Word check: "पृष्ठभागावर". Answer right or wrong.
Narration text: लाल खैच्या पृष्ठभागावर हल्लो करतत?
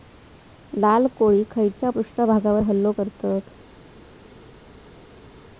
right